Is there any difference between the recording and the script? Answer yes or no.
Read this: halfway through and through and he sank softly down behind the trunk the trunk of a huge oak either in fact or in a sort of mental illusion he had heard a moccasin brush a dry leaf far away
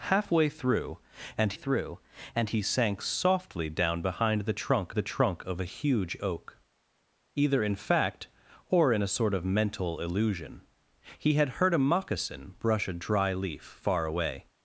no